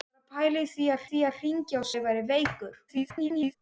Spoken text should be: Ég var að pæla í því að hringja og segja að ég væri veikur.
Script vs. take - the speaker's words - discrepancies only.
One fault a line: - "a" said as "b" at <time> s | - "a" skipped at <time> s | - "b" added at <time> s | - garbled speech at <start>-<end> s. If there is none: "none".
- "því að" added at 1.1 s
- "segja" skipped at 1.9 s
- garbled speech at 2.9-3.6 s